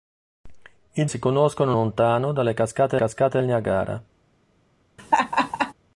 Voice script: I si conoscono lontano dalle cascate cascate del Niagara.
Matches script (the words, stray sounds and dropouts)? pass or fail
fail